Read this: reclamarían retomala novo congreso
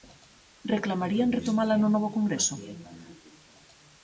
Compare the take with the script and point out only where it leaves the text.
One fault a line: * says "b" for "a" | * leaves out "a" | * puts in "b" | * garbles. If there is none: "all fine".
* puts in "no"